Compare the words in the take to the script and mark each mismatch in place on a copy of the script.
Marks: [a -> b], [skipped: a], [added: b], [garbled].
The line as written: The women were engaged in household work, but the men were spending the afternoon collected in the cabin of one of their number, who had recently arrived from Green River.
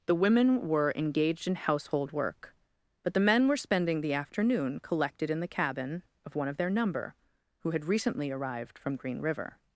The women were engaged in household work, but the men were spending the afternoon collected in the cabin of one of their number, who had recently arrived from Green River.